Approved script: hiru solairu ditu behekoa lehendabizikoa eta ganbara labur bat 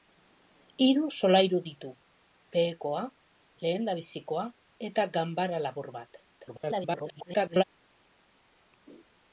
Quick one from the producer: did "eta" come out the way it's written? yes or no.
yes